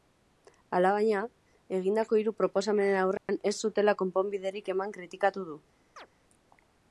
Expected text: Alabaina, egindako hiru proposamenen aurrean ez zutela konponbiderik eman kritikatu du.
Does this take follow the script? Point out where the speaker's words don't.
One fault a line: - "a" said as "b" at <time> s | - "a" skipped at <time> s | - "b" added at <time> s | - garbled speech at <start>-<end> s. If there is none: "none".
none